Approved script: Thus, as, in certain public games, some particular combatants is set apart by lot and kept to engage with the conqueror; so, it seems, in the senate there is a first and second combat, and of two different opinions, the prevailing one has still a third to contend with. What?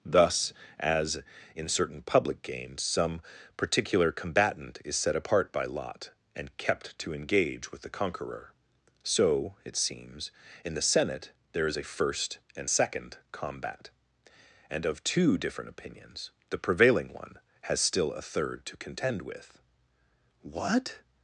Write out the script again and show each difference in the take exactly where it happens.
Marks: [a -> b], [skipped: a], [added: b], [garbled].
Thus, as, in certain public games, some particular [combatants -> combatant] is set apart by lot and kept to engage with the conqueror; so, it seems, in the senate there is a first and second combat, and of two different opinions, the prevailing one has still a third to contend with. What?